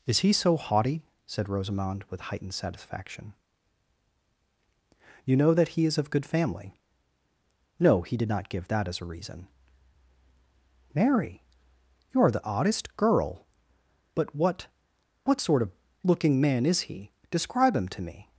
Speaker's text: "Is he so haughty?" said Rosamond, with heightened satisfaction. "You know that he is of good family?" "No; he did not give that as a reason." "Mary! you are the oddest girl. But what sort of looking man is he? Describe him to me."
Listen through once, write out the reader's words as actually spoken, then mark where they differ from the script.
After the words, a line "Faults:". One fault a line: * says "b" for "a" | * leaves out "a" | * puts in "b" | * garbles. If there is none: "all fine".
"Is he so haughty?" said Rosamond, with heightened satisfaction. "You know that he is of good family?" "No; he did not give that as a reason." "Mary! you are the oddest girl. But what what sort of looking man is he? Describe him to me."
Faults:
* puts in "what"